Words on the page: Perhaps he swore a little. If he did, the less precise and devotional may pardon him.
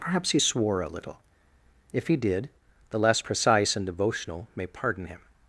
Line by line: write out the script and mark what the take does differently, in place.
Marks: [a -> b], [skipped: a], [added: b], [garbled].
Perhaps he swore a little. If he did, the less precise and devotional may pardon him.